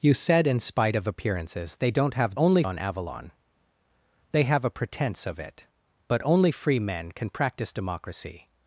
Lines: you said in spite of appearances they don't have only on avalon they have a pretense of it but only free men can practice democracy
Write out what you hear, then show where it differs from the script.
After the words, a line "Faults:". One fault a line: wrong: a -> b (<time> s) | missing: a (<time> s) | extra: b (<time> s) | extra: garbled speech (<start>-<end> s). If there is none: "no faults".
you said in spite of appearances they don't have only on avalon they have a pretense of it but only free men can practice democracy
Faults:
no faults